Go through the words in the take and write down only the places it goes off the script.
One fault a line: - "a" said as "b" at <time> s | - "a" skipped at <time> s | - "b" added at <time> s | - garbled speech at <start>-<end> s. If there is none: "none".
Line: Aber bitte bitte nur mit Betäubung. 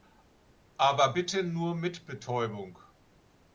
- "bitte" skipped at 1.4 s